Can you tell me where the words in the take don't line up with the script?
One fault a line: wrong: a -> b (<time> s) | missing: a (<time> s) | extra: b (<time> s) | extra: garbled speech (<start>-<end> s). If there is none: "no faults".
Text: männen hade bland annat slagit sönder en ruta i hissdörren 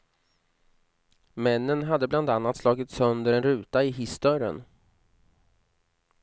no faults